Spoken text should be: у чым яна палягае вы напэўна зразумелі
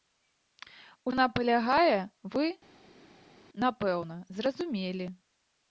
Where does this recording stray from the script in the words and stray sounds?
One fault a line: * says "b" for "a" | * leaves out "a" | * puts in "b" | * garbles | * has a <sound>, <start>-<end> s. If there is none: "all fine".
* leaves out "чым"